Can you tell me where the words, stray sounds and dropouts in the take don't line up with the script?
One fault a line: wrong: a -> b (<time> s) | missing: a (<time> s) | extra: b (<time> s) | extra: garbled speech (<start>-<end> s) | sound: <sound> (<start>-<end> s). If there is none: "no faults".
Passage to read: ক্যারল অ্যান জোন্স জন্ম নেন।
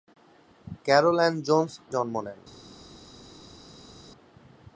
no faults